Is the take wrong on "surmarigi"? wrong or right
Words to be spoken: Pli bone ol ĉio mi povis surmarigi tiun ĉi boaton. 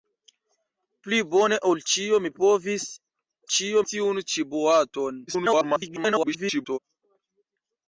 wrong